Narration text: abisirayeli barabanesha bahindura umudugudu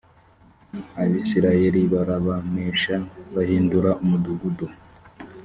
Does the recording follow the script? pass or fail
pass